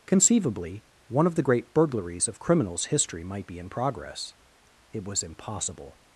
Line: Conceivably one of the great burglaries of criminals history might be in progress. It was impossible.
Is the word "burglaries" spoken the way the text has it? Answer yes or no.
yes